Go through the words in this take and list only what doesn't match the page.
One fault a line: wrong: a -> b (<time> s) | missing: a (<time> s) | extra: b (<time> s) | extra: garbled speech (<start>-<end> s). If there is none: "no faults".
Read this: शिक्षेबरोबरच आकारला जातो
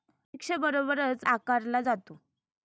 no faults